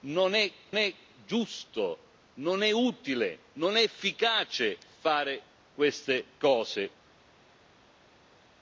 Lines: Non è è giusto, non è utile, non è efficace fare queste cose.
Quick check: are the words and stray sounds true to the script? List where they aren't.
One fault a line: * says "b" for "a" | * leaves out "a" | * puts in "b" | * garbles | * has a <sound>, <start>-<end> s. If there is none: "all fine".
all fine